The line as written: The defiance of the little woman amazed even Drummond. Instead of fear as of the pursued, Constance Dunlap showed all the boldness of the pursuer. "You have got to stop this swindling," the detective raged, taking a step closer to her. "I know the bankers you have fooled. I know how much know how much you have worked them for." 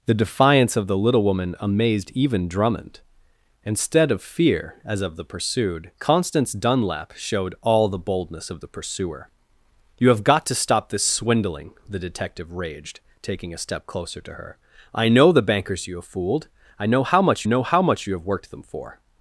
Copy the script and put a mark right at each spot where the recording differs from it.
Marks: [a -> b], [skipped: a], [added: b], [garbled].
The defiance of the little woman amazed even Drummond. Instead of fear as of the pursued, Constance Dunlap showed all the boldness of the pursuer. "You have got to stop this swindling," the detective raged, taking a step closer to her. "I know the bankers you have fooled. I know how much know how much you have worked them for."